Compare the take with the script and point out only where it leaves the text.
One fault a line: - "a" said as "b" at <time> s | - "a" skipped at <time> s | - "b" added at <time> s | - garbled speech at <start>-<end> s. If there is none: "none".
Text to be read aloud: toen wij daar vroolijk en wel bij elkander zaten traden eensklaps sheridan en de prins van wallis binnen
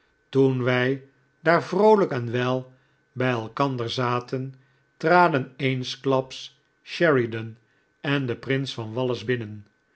none